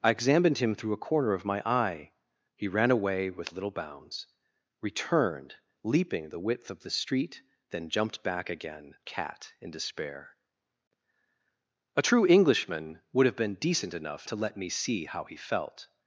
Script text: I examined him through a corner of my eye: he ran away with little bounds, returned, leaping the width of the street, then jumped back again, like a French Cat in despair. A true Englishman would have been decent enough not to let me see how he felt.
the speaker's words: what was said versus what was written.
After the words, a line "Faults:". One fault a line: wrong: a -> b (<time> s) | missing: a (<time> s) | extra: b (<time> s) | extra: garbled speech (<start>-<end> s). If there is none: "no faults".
I examined him through a corner of my eye: he ran away with little bounds, returned, leaping the width of the street, then jumped back again, Cat in despair. A true Englishman would have been decent enough to let me see how he felt.
Faults:
missing: like a French (8.9 s)
missing: not (14.3 s)